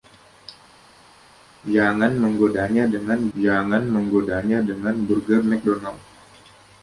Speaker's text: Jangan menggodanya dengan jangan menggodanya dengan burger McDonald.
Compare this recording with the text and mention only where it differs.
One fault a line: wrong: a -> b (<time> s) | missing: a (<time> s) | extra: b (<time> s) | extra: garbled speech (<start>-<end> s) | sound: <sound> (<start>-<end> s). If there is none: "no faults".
no faults